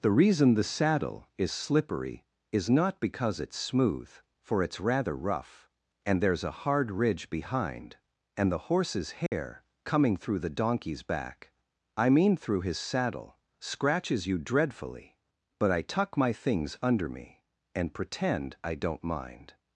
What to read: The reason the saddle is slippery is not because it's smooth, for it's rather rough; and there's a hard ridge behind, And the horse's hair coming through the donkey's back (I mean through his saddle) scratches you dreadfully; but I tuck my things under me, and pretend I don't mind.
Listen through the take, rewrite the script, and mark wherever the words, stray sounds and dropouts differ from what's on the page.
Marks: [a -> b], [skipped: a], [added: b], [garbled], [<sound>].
The reason the saddle is slippery is not because it's smooth, for it's rather rough; and there's a hard ridge behind, And the horse's hair [dropout] coming through the donkey's back (I mean through his saddle) scratches you dreadfully; but I tuck my things under me, and pretend I don't mind.